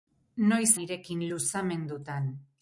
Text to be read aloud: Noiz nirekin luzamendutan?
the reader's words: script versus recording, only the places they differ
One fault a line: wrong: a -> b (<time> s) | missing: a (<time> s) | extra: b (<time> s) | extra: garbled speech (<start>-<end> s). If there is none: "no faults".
no faults